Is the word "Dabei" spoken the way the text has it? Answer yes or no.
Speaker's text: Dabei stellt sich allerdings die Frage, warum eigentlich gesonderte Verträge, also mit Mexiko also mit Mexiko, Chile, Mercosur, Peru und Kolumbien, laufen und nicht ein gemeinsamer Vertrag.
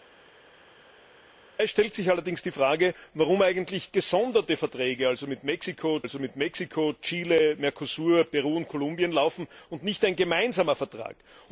yes